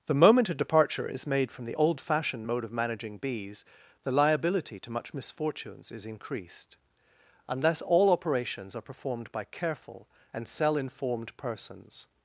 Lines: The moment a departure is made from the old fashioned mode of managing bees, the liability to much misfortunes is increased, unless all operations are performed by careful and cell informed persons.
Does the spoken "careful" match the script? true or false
true